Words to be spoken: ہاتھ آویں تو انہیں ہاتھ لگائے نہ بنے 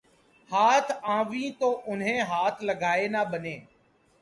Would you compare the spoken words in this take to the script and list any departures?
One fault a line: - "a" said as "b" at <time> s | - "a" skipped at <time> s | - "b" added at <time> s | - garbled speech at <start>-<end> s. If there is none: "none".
none